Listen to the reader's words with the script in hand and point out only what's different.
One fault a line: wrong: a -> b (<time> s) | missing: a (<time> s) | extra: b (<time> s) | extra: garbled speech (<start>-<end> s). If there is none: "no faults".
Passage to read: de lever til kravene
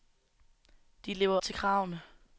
no faults